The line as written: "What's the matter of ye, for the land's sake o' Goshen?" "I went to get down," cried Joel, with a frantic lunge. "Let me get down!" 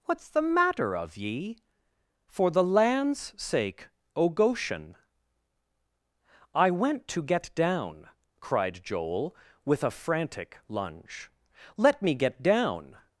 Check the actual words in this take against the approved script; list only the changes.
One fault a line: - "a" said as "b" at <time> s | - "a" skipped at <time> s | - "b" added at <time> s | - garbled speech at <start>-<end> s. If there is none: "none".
none